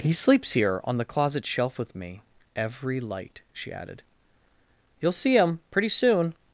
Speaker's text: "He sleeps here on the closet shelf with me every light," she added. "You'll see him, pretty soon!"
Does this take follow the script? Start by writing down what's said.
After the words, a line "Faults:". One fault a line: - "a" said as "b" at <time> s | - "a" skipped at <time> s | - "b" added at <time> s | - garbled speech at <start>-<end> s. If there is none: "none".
"He sleeps here on the closet shelf with me every light," she added. "You'll see him, pretty soon!"
Faults:
none